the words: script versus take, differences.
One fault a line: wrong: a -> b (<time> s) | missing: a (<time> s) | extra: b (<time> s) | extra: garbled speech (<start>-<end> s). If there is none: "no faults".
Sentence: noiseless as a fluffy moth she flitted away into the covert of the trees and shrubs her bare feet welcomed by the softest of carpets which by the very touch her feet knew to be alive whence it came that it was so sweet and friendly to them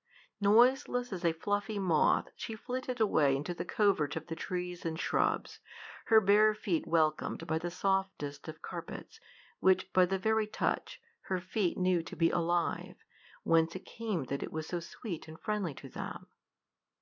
no faults